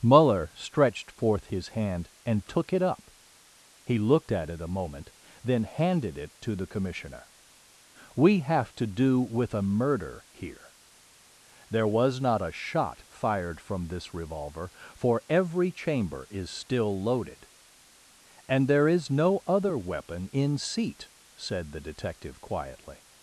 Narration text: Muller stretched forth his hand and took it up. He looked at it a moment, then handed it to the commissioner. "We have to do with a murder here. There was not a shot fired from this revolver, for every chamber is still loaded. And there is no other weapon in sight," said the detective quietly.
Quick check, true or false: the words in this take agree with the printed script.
false